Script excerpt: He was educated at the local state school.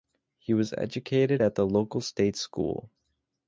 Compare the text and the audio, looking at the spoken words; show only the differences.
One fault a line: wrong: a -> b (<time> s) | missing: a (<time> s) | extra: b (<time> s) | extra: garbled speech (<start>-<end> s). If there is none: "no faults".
no faults